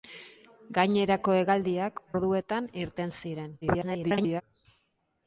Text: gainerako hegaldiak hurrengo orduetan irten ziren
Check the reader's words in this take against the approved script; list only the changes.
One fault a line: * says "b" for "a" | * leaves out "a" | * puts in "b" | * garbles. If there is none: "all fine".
* leaves out "hurrengo"
* garbles